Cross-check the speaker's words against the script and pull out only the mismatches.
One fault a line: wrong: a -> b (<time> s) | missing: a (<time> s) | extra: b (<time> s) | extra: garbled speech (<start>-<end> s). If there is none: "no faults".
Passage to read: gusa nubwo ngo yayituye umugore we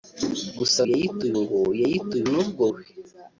wrong: nubwo -> yayituye (0.9 s)
wrong: umugore -> nubwo (2.3 s)